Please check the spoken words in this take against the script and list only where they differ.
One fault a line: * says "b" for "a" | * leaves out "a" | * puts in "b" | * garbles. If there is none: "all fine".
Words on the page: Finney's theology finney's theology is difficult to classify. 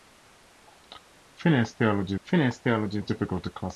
all fine